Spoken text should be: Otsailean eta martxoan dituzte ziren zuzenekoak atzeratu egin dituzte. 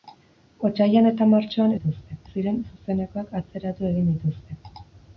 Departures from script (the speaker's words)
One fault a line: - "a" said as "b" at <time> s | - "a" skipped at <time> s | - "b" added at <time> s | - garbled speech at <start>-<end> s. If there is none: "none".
none